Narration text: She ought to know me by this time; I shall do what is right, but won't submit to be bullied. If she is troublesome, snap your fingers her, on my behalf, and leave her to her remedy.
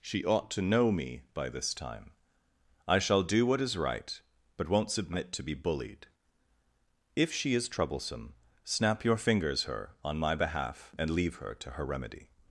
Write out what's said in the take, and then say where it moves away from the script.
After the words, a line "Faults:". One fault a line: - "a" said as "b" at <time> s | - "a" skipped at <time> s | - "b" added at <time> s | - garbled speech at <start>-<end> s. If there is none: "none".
She ought to know me by this time; I shall do what is right, but won't submit to be bullied. If she is troublesome, snap your fingers her, on my behalf, and leave her to her remedy.
Faults:
none